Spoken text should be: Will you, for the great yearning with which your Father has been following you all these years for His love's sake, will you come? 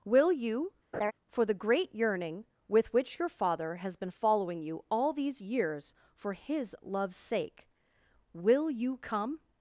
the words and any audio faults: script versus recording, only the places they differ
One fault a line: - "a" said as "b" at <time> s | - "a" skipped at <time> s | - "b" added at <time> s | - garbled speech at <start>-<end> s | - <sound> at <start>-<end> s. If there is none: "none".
- laugh at 0.9-1.1 s